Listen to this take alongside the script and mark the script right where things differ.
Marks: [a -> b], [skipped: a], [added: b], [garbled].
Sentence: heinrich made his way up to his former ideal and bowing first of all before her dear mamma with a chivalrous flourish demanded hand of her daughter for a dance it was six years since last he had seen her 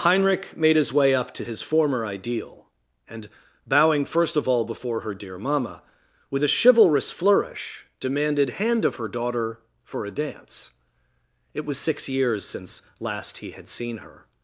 heinrich made his way up to his former ideal and bowing first of all before her dear mamma with a chivalrous flourish demanded hand of her daughter for a dance it was six years since last he had seen her